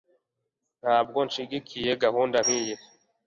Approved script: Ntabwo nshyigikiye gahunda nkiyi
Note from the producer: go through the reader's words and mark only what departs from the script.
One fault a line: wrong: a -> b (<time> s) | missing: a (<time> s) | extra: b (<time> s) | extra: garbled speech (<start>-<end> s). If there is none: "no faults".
no faults